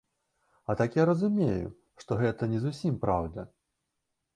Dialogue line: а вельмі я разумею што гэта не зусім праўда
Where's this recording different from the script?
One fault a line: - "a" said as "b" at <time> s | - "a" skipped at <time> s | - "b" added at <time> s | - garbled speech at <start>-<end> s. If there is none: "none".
- "вельмі" said as "так" at 0.8 s